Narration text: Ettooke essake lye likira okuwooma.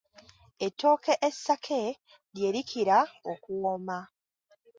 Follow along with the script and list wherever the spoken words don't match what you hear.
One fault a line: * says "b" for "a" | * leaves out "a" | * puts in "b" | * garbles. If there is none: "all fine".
all fine